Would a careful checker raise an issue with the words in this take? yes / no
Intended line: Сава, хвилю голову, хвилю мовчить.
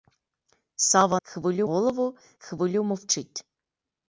no